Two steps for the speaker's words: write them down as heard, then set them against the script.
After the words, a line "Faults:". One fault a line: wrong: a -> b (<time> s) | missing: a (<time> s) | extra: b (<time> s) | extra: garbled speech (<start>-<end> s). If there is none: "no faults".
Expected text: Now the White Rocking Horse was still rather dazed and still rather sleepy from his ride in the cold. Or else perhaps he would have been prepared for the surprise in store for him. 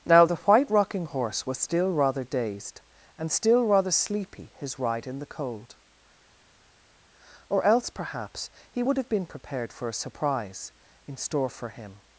Now the White Rocking Horse was still rather dazed and still rather sleepy his ride in the cold. Or else perhaps he would have been prepared for a surprise in store for him.
Faults:
missing: from (4.5 s)
wrong: the -> a (9.9 s)